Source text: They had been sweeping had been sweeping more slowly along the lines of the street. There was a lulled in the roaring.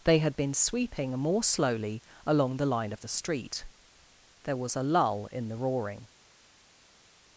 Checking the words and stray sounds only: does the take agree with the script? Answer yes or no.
no